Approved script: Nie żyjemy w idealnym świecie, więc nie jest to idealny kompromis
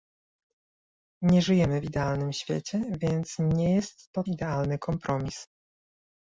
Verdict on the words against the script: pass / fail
pass